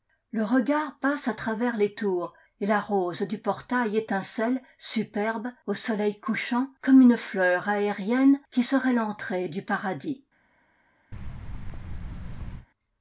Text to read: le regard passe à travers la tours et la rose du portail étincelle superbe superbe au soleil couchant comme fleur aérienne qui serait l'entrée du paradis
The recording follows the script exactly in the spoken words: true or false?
false